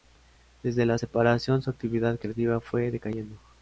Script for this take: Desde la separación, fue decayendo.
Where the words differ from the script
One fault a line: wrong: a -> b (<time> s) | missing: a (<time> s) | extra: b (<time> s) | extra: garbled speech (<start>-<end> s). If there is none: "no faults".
extra: su actividad creativa (1.6 s)